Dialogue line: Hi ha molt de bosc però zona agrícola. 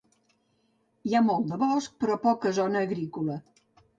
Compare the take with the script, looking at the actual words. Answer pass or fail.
fail